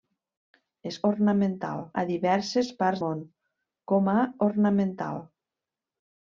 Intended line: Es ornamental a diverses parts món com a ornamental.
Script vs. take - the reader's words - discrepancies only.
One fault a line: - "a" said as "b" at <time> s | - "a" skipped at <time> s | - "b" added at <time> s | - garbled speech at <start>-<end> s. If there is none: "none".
none